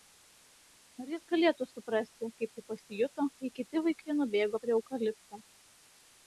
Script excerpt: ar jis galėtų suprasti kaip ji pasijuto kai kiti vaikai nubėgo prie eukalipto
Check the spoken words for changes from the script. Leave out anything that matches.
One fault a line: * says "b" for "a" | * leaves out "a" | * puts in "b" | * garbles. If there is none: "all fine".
all fine